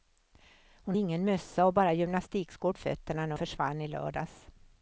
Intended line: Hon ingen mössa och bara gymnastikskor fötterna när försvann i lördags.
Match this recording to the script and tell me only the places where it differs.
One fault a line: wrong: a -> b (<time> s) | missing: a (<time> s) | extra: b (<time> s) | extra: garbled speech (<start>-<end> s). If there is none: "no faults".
no faults